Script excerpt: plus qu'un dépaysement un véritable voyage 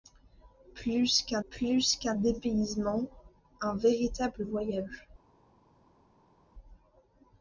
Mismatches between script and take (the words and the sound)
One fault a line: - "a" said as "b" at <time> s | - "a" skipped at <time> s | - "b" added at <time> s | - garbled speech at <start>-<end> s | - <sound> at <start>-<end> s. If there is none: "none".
- "plus qu'un" added at 1.5 s